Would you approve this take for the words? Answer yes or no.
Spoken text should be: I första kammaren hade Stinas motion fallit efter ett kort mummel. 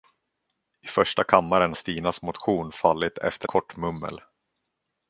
no